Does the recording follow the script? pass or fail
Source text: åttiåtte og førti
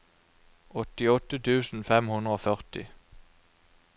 fail